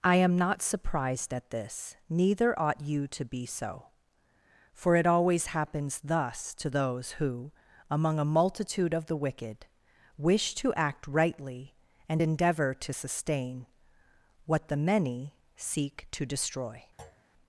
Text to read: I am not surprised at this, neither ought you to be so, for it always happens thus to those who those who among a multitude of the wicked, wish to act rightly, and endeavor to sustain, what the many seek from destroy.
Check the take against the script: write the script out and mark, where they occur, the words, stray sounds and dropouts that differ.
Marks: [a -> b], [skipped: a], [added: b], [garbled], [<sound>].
I am not surprised at this, neither ought you to be so, for it always happens thus to those who [skipped: those who] among a multitude of the wicked, wish to act rightly, and endeavor to sustain, what the many seek [from -> to] destroy. [thud]